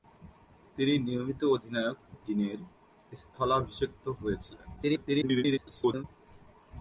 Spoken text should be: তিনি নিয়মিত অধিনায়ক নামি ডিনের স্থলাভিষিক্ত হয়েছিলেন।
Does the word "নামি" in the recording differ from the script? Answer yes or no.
yes